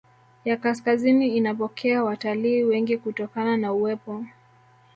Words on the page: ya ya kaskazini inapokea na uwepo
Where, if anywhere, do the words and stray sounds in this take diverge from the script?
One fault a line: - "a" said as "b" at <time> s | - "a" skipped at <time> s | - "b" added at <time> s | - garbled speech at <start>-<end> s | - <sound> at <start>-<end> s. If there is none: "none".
- "ya" skipped at 0.6 s
- "watalii wengi kutokana" added at 2.0 s